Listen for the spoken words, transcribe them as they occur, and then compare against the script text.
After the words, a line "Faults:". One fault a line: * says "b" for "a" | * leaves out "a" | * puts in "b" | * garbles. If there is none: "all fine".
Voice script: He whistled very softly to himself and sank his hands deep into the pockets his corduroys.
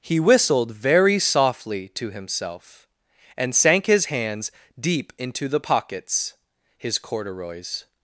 He whistled very softly to himself and sank his hands deep into the pockets his corduroys.
Faults:
all fine